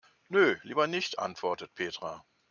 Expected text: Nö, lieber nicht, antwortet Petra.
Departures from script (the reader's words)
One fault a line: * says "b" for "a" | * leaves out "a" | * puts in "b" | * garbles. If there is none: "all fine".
all fine